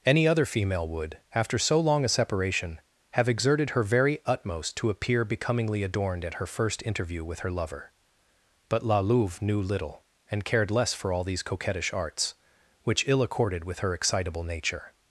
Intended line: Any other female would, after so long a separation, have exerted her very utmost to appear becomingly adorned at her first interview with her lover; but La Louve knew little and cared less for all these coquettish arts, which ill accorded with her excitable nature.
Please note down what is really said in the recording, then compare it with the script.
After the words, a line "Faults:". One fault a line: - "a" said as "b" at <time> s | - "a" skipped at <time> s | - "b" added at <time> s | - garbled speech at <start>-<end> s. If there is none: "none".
Any other female would, after so long a separation, have exerted her very utmost to appear becomingly adorned at her first interview with her lover; but La Louve knew little and cared less for all these coquettish arts, which ill accorded with her excitable nature.
Faults:
none